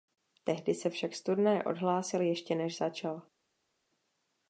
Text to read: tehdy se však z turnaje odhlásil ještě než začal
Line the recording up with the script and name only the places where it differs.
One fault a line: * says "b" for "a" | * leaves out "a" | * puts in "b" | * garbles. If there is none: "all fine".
all fine